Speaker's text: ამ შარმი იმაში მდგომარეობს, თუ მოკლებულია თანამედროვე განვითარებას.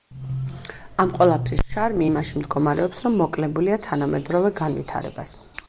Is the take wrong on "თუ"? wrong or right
wrong